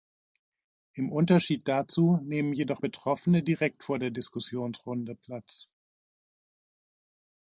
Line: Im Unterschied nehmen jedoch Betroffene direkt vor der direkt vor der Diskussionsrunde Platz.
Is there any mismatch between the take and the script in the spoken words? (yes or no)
yes